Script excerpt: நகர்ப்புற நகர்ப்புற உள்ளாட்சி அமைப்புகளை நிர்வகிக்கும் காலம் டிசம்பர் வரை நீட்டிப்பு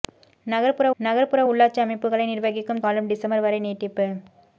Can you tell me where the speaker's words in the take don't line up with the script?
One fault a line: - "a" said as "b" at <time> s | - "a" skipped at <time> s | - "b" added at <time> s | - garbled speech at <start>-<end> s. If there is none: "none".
none